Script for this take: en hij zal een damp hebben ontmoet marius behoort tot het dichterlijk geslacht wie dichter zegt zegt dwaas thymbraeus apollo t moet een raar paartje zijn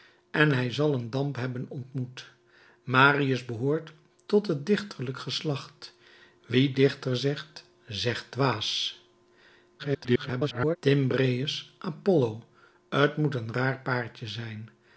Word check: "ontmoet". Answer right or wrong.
right